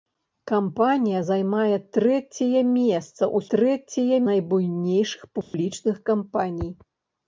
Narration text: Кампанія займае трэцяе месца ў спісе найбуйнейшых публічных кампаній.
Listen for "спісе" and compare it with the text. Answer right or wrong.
wrong